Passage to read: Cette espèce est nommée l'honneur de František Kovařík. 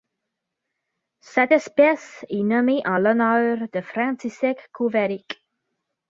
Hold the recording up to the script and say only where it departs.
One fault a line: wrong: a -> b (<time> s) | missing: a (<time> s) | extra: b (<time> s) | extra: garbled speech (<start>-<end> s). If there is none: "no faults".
extra: en (2.9 s)